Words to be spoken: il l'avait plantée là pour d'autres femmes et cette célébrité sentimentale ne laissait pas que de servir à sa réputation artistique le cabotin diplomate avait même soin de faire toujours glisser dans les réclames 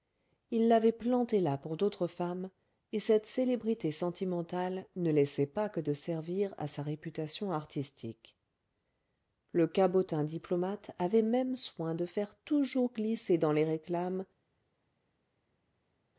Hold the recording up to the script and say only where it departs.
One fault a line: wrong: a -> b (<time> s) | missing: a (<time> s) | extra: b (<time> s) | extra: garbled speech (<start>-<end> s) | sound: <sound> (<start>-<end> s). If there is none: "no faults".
no faults